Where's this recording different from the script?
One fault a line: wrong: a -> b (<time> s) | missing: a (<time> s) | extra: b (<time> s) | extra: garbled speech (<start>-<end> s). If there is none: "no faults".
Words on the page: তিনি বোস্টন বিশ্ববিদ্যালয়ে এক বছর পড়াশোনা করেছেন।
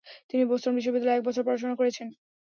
no faults